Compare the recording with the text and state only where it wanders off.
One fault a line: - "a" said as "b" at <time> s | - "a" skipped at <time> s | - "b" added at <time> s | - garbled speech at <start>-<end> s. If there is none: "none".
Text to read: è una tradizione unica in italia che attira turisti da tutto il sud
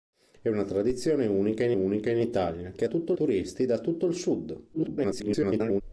- "unica in" added at 1.7 s
- "attira" said as "tutto" at 2.8 s
- garbled speech at 4.7-5.8 s